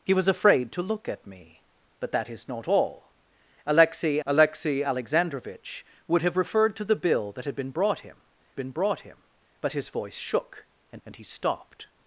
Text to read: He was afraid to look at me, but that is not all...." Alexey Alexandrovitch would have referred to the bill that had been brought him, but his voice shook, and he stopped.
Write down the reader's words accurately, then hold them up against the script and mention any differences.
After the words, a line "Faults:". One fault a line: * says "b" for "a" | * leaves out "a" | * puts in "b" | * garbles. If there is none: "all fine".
He was afraid to look at me, but that is not all...." Alexey alexey Alexandrovitch would have referred to the bill that had been brought him been brought him, but his voice shook, and and he stopped.
Faults:
* puts in "alexey"
* puts in "been brought him"
* puts in "and"